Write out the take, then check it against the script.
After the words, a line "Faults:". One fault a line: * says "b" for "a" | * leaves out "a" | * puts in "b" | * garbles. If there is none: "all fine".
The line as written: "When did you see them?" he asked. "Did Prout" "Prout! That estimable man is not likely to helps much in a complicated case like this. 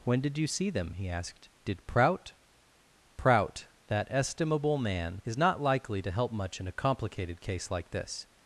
"When did you see them?" he asked. "Did Prout" "Prout! That estimable man is not likely to help much in a complicated case like this.
Faults:
* says "help" for "helps"